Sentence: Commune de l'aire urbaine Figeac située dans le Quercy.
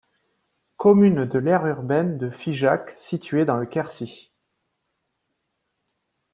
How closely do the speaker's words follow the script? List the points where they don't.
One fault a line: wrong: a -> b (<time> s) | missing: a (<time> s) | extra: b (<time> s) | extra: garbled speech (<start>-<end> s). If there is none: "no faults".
extra: de (2.2 s)